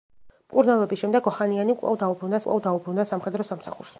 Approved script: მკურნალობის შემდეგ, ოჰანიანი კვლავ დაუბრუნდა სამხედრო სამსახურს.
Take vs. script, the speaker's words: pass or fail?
fail